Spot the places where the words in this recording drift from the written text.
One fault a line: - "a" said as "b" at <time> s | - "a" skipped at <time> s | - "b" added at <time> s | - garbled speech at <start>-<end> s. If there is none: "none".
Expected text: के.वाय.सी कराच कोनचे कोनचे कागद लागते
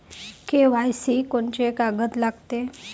- "कराच कोनचे" skipped at 1.2 s